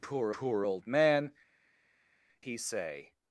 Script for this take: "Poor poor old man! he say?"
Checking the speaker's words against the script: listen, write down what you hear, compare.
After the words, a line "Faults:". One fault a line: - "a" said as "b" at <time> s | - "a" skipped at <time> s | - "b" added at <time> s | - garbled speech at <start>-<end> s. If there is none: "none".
"Poor poor old man! he say?"
Faults:
none